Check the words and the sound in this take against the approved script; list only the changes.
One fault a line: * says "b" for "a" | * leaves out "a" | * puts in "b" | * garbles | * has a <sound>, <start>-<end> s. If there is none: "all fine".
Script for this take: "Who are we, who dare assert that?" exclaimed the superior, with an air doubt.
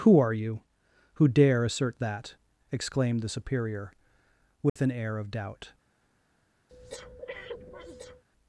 * says "you" for "we"
* has a dropout, 4.7-4.8 s
* puts in "of"
* has a breath, 6.7-8.2 s